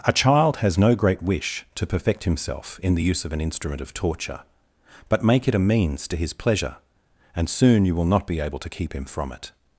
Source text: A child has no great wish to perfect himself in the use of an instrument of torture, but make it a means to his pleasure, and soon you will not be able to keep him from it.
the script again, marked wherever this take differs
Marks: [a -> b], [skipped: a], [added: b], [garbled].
A child has no great wish to perfect himself in the use of an instrument of torture, but make it a means to his pleasure, and soon you will not be able to keep him from it.